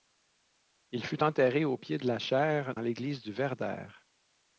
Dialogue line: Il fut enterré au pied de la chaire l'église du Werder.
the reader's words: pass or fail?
pass